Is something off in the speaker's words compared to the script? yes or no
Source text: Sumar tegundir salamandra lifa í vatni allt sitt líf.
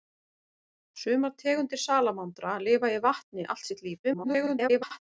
yes